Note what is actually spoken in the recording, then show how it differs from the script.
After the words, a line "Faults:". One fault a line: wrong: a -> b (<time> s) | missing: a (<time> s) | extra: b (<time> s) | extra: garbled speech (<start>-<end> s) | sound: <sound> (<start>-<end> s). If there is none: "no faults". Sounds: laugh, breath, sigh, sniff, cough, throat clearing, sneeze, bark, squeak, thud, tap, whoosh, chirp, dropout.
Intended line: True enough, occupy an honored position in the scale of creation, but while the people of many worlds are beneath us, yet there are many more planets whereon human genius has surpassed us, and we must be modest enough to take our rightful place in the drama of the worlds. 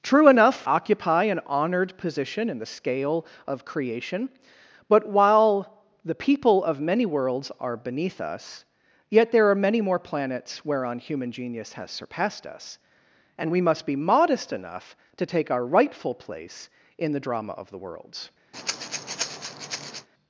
True enough, occupy an honored position in the scale of creation, but while the people of many worlds are beneath us, yet there are many more planets whereon human genius has surpassed us, and we must be modest enough to take our rightful place in the drama of the worlds.
Faults:
sound: breath (18.5-20.1 s)